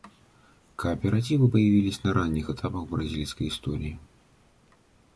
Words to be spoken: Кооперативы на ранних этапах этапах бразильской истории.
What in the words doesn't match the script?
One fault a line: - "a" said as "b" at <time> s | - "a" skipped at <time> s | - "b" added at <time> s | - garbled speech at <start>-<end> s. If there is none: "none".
- "появились" added at 1.4 s
- "этапах" skipped at 2.9 s